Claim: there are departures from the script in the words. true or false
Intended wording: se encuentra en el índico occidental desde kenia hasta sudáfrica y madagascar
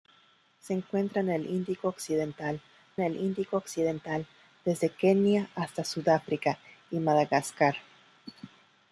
true